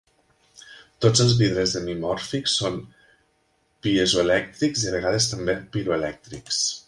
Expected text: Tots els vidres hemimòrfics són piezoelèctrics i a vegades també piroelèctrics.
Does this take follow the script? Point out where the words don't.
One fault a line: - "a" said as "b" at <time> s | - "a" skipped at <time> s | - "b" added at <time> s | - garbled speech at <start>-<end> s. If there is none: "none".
none